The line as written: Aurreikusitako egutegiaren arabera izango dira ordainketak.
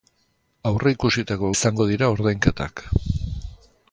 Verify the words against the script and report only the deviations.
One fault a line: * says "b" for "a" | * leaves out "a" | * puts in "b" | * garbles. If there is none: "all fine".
* leaves out "egutegiaren arabera"